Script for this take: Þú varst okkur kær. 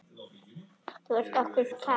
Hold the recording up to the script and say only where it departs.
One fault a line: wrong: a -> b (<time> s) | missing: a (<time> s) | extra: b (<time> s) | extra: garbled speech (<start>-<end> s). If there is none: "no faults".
no faults